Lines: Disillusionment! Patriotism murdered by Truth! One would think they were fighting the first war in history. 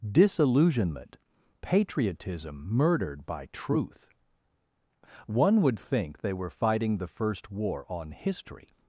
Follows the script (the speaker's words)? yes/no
no